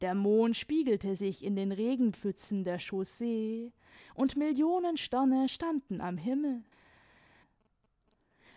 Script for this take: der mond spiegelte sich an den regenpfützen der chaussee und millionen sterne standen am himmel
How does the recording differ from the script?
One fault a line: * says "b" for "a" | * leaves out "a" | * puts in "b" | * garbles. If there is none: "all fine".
* says "in" for "an"